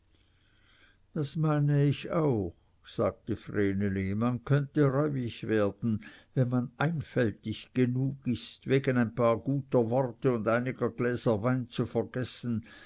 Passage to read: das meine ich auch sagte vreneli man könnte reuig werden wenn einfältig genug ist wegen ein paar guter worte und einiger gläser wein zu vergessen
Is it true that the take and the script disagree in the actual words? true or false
true